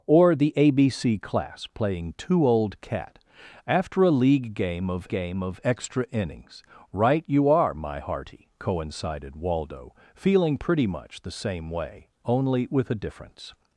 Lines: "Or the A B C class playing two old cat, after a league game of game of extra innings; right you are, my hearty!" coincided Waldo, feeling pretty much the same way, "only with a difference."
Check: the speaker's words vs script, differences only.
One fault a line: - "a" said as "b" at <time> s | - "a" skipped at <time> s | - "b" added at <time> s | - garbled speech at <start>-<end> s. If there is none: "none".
none